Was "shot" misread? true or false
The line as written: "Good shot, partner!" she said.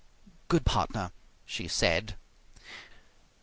true